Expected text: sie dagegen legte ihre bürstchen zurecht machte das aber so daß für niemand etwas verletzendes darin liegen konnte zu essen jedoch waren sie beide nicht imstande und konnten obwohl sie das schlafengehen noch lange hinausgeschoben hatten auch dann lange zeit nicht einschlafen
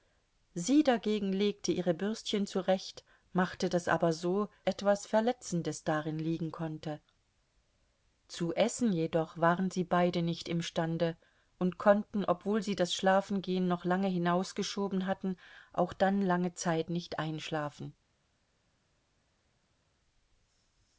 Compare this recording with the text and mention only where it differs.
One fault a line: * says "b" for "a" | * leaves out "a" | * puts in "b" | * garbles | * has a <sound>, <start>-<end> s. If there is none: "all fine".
* leaves out "daß für niemand"